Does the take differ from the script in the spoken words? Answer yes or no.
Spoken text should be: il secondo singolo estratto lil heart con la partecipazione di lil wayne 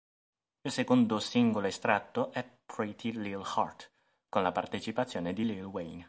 yes